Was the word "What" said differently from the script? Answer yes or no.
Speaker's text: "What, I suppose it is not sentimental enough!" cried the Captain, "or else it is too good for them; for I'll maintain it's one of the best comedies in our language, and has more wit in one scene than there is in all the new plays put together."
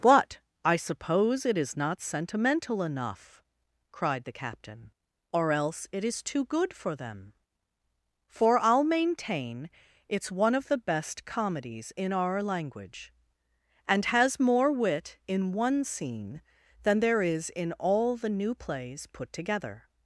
yes